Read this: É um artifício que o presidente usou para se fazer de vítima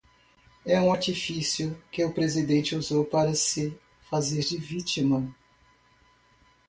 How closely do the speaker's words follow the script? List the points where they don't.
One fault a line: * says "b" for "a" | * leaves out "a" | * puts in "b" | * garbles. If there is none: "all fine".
all fine